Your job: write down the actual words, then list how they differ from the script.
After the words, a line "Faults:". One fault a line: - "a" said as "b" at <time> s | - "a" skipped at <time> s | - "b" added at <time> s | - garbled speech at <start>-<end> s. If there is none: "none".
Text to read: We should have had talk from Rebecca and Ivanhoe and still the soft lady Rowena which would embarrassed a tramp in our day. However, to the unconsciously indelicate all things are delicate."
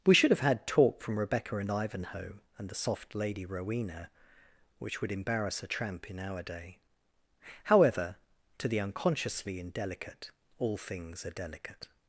We should have had talk from Rebecca and Ivanhoe and the soft lady Rowena which would embarrass a tramp in our day. However, to the unconsciously indelicate all things are delicate."
Faults:
- "still" skipped at 2.7 s
- "embarrassed" said as "embarrass" at 5.1 s